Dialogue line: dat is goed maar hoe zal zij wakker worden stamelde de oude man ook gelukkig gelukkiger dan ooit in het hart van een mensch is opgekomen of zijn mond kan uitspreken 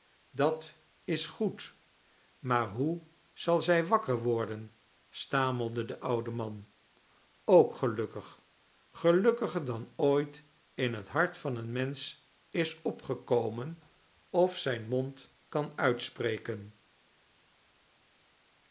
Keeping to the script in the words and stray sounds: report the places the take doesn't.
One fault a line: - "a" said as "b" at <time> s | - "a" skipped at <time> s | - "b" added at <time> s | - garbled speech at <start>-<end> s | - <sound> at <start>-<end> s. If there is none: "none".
none